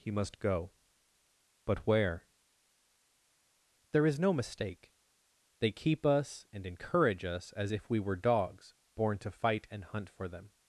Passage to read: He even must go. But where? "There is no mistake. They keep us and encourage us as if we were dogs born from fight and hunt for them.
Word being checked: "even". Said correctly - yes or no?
no